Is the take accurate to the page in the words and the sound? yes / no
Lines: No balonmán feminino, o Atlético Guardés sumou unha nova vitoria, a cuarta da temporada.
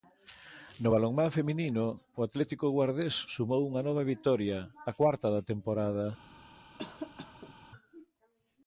no